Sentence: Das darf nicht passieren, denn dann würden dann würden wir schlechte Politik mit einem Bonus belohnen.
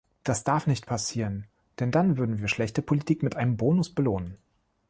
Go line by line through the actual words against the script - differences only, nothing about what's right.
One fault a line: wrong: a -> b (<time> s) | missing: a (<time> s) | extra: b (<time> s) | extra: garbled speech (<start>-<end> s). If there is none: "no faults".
missing: dann würden (2.4 s)